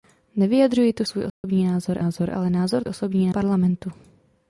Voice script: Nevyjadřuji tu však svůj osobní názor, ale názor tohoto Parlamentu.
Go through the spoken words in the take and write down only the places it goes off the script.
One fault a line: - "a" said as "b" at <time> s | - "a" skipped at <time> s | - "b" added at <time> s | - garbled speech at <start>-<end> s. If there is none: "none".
- "však" skipped at 1.0 s
- "názor" added at 2.0 s
- "tohoto" said as "osobní" at 2.9 s